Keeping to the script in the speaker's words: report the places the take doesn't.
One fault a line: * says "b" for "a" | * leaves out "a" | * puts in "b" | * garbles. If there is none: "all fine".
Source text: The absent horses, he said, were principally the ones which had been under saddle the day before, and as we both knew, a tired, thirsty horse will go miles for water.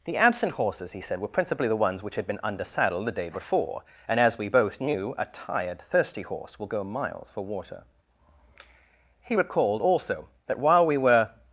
* puts in "He recalled also that while we were"